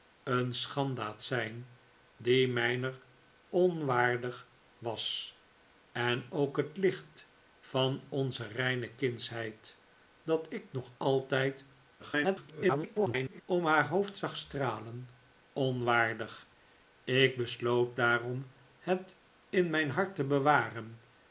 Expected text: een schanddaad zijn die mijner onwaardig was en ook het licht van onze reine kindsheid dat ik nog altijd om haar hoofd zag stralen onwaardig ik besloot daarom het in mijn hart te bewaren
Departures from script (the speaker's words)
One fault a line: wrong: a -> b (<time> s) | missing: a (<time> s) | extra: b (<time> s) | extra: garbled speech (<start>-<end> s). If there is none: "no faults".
extra: garbled speech (12.0-13.4 s)